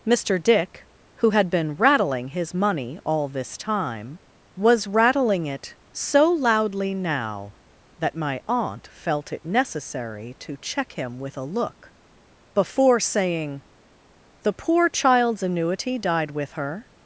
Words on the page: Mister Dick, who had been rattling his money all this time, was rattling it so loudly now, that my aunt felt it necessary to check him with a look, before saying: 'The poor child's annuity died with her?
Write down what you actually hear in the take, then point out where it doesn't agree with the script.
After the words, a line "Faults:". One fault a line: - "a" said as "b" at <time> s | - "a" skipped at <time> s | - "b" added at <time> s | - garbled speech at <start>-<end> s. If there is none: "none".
Mister Dick, who had been rattling his money all this time, was rattling it so loudly now, that my aunt felt it necessary to check him with a look, before saying: 'The poor child's annuity died with her?
Faults:
none